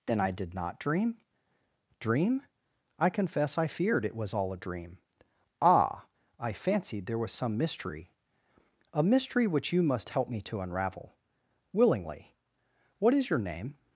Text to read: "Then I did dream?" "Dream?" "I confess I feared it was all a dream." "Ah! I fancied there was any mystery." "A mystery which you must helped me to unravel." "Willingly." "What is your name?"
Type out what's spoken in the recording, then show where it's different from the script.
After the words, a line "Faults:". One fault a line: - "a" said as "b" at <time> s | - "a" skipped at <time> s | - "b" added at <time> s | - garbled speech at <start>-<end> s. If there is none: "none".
"Then I did not dream?" "Dream?" "I confess I feared it was all a dream." "Ah! I fancied there was some mystery." "A mystery which you must help me to unravel." "Willingly." "What is your name?"
Faults:
- "not" added at 0.5 s
- "any" said as "some" at 7.3 s
- "helped" said as "help" at 10.1 s